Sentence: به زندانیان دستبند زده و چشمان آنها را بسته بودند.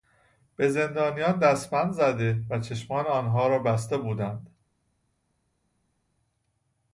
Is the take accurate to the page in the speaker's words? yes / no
yes